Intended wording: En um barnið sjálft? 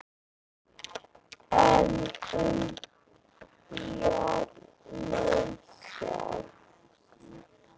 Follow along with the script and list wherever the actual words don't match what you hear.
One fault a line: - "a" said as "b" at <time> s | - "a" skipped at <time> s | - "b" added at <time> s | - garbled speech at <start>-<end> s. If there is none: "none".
none